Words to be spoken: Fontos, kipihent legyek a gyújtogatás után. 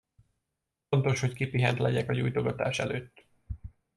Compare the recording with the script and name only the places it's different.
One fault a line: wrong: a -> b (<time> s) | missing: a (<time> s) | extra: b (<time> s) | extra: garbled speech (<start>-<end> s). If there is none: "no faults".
extra: hogy (1.2 s)
wrong: után -> előtt (2.8 s)